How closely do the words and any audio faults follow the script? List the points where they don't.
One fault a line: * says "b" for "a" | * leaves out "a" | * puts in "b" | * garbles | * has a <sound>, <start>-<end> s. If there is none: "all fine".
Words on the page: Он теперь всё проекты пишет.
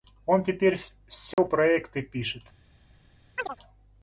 * has a dropout, 1.3-1.4 s
* has a chirp, 3.4-3.6 s